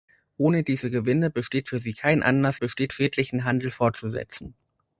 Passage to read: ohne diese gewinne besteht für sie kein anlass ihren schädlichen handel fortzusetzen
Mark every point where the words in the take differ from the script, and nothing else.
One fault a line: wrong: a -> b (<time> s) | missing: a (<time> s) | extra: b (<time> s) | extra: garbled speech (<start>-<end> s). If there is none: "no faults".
wrong: ihren -> besteht (2.5 s)